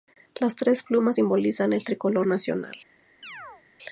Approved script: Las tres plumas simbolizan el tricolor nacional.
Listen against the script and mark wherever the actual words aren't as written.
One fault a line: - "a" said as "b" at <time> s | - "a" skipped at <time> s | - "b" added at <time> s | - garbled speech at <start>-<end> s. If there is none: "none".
none